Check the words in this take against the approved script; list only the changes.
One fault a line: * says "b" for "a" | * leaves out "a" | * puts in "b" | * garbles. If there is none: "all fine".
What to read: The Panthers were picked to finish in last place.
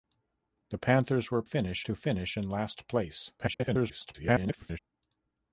* says "finish" for "picked"
* garbles